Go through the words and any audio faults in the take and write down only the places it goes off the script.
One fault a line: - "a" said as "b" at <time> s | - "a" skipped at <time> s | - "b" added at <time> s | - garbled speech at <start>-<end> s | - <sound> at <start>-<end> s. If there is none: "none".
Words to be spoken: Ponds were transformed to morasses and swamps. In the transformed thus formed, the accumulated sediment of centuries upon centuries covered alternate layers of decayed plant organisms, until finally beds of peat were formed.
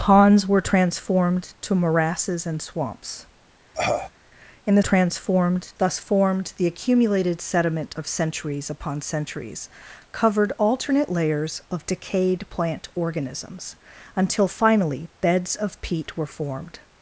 - cough at 3.7-4.1 s